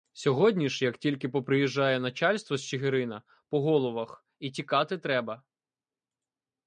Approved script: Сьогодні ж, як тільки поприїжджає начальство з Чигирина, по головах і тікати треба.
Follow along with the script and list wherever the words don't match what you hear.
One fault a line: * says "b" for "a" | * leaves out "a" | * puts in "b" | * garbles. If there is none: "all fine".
all fine